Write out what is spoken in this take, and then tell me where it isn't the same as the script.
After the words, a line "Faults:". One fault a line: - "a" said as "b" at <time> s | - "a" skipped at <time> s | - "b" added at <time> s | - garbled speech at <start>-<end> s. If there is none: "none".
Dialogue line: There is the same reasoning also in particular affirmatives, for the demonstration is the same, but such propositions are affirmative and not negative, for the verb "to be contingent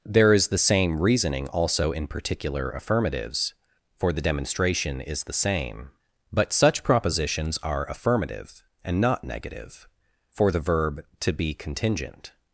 There is the same reasoning also in particular affirmatives, for the demonstration is the same, but such propositions are affirmative and not negative, for the verb "to be contingent
Faults:
none